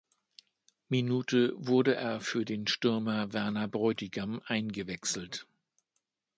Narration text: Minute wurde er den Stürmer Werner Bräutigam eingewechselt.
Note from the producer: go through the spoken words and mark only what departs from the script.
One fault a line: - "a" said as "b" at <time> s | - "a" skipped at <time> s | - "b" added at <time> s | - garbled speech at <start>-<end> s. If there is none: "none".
- "für" added at 2.2 s